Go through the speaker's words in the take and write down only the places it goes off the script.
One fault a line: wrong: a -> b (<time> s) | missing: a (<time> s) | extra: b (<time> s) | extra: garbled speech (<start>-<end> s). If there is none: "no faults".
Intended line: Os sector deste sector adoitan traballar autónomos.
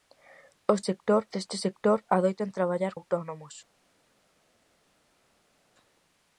no faults